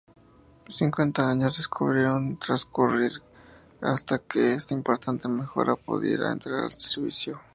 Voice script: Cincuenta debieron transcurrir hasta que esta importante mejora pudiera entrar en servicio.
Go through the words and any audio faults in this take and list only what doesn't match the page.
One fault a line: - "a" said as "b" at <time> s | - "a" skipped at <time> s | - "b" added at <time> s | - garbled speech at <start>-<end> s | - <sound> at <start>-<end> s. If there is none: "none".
- "años" added at 1.3 s